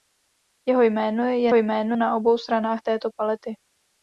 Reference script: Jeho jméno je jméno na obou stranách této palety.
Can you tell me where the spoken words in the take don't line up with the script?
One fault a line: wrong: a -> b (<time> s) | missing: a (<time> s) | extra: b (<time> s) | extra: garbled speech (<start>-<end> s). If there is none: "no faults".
no faults